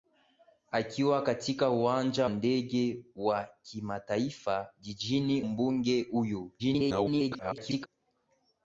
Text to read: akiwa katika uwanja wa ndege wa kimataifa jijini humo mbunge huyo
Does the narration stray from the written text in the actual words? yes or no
yes